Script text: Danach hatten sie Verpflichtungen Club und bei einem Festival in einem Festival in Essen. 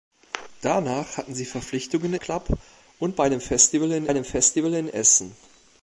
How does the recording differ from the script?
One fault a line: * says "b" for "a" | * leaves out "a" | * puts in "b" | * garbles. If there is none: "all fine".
all fine